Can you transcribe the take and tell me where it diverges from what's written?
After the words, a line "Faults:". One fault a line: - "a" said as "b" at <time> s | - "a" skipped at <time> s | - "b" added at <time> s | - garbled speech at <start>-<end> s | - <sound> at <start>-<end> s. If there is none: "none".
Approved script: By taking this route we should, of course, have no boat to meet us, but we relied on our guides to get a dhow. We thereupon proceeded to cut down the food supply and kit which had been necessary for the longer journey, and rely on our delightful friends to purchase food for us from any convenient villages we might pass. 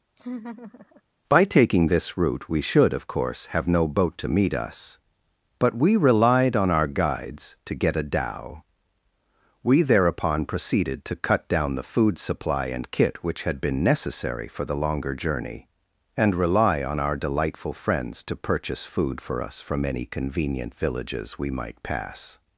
By taking this route we should, of course, have no boat to meet us, but we relied on our guides to get a dhow. We thereupon proceeded to cut down the food supply and kit which had been necessary for the longer journey, and rely on our delightful friends to purchase food for us from any convenient villages we might pass.
Faults:
- laugh at 0.2-1.0 s